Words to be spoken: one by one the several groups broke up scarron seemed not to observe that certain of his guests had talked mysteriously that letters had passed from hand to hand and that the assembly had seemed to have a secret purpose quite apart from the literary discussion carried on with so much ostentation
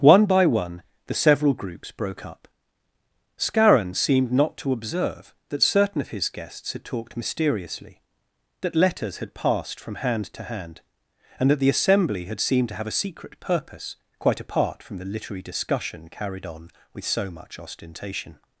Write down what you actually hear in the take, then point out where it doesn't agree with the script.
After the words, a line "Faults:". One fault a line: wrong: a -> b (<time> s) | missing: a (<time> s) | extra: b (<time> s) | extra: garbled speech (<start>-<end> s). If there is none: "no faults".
one by one the several groups broke up scarron seemed not to observe that certain of his guests had talked mysteriously that letters had passed from hand to hand and that the assembly had seemed to have a secret purpose quite apart from the literary discussion carried on with so much ostentation
Faults:
no faults